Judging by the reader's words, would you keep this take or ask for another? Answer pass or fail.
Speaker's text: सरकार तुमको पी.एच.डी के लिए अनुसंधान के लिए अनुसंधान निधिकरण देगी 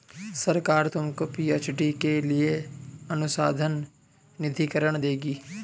fail